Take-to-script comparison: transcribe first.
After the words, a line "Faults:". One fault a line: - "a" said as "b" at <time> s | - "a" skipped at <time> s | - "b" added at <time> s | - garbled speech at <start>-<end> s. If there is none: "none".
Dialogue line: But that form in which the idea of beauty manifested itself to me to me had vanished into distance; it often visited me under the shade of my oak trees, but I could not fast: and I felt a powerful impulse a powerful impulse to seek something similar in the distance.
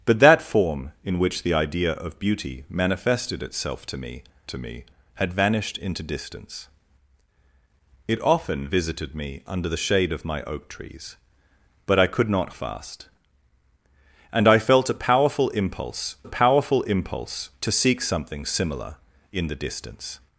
But that form in which the idea of beauty manifested itself to me to me had vanished into distance; it often visited me under the shade of my oak trees, but I could not fast: and I felt a powerful impulse a powerful impulse to seek something similar in the distance.
Faults:
none